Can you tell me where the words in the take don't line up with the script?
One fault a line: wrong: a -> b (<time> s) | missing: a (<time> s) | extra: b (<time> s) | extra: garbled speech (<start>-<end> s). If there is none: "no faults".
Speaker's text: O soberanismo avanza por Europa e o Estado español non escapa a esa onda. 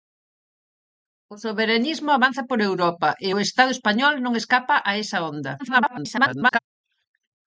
extra: garbled speech (5.6-6.6 s)